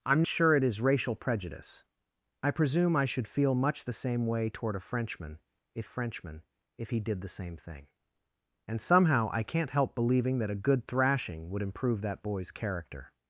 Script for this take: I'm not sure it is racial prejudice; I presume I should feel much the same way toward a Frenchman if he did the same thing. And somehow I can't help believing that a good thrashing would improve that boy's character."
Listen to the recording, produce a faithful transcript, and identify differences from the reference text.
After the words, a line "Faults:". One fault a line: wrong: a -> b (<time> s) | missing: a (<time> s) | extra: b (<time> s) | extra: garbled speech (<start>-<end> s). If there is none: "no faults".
I'm sure it is racial prejudice; I presume I should feel much the same way toward a Frenchman if Frenchman if he did the same thing. And somehow I can't help believing that a good thrashing would improve that boy's character."
Faults:
missing: not (0.2 s)
extra: Frenchman if (5.8 s)